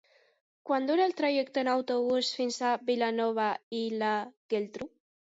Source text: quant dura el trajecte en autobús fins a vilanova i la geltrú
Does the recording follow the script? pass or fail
pass